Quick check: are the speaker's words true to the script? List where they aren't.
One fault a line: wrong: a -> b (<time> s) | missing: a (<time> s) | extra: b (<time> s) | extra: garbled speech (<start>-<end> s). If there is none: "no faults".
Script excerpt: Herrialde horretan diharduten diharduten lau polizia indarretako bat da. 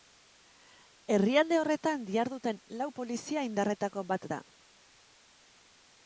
missing: diharduten (2.6 s)